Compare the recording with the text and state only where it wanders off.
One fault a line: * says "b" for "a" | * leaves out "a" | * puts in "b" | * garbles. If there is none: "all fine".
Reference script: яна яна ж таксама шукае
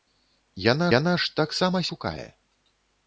all fine